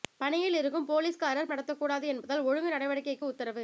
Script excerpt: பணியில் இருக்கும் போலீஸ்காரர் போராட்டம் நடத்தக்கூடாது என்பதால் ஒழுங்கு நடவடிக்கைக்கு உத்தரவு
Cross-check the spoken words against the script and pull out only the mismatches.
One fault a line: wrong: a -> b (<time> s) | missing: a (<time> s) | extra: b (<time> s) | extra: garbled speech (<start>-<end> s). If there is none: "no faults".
missing: போராட்டம் (1.5 s)